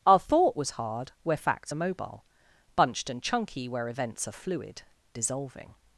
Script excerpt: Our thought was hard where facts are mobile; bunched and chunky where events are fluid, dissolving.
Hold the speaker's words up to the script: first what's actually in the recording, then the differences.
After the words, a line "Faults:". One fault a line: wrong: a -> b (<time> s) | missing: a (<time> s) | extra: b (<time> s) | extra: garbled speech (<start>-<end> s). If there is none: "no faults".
Our thought was hard where facts are mobile; bunched and chunky where events are fluid, dissolving.
Faults:
no faults